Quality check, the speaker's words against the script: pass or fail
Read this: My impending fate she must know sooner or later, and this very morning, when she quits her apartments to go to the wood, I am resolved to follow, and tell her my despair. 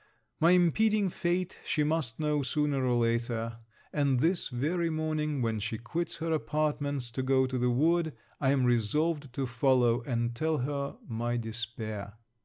pass